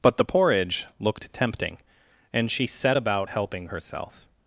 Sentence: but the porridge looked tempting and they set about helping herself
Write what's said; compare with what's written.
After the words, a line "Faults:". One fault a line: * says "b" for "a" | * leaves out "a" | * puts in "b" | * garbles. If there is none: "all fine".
but the porridge looked tempting and she set about helping herself
Faults:
* says "she" for "they"